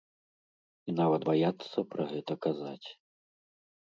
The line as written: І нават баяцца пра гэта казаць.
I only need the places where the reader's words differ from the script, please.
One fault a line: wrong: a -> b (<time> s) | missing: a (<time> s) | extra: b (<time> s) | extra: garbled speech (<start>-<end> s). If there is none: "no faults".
no faults